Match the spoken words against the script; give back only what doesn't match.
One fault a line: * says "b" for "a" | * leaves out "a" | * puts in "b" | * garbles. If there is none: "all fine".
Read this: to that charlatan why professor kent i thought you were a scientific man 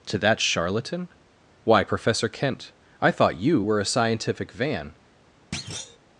* says "van" for "man"